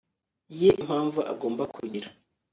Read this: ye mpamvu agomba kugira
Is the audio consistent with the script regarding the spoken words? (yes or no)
yes